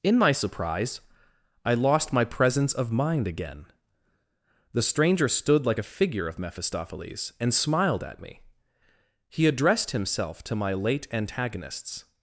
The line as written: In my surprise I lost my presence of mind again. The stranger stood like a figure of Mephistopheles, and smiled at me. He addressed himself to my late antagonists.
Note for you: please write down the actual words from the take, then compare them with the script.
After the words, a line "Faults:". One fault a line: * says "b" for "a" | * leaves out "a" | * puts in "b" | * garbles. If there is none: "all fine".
In my surprise I lost my presence of mind again. The stranger stood like a figure of Mephistopheles, and smiled at me. He addressed himself to my late antagonists.
Faults:
all fine